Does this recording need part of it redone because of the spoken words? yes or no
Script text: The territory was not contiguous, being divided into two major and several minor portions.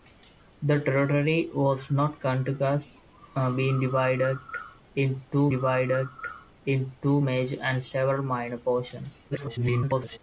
yes